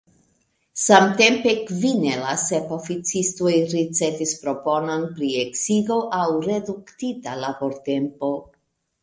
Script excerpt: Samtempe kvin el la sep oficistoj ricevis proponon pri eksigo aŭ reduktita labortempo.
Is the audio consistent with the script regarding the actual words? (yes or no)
yes